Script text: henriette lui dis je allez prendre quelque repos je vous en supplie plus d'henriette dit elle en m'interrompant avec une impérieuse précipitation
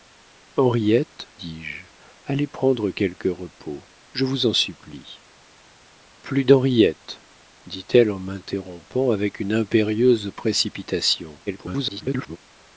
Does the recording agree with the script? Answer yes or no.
no